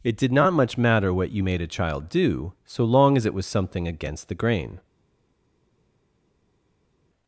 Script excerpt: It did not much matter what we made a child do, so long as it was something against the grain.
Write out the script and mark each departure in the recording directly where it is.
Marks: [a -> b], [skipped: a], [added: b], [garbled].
It did not much matter what [we -> you] made a child do, so long as it was something against the grain.